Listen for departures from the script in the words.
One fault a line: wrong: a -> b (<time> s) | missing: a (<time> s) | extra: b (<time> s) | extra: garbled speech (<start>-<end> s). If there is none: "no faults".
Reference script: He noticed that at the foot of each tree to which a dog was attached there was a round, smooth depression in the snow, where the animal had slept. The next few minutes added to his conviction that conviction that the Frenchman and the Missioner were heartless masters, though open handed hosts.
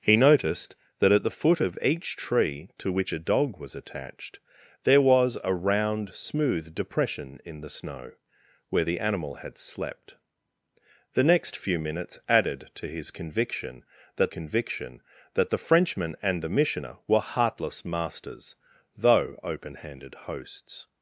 no faults